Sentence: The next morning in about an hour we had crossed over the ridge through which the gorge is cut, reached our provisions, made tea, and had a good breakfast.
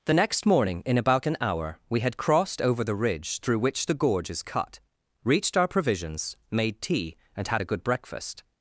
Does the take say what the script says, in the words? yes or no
yes